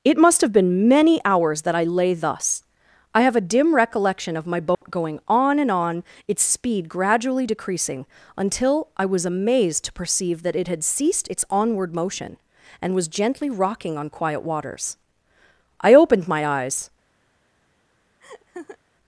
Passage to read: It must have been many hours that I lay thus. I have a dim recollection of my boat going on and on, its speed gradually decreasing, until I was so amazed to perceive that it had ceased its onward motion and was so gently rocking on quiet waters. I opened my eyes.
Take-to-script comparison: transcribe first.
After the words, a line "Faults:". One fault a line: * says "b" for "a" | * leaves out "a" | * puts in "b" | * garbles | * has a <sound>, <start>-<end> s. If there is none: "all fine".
It must have been many hours that I lay thus. I have a dim recollection of my boat going on and on, its speed gradually decreasing, until I was amazed to perceive that it had ceased its onward motion and was gently rocking on quiet waters. I opened my eyes.
Faults:
* has a dropout, 4.7-4.8 s
* leaves out "so"
* leaves out "so"
* has a laugh, 18.2-18.8 s